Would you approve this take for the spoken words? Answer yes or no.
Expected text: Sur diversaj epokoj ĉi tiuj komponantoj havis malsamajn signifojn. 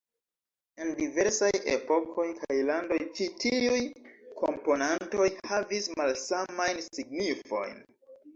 no